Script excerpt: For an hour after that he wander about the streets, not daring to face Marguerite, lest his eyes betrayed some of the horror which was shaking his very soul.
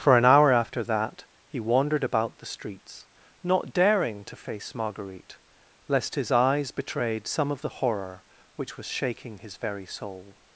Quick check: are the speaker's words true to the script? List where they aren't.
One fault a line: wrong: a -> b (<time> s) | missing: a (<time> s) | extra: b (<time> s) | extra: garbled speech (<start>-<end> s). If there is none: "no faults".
wrong: wander -> wandered (1.6 s)